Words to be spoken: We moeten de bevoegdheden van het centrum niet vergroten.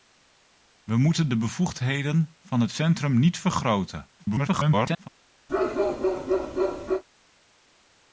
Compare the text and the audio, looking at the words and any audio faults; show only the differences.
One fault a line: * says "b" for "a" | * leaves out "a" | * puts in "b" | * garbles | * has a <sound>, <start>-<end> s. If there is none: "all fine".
* garbles
* has a bark, 5.5-7.0 s